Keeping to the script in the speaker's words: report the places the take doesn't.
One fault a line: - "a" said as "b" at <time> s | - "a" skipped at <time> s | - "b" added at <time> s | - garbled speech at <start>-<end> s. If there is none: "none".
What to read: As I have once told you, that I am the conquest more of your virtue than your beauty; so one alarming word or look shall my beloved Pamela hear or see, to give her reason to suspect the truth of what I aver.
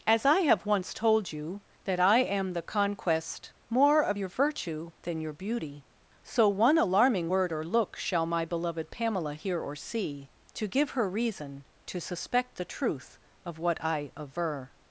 none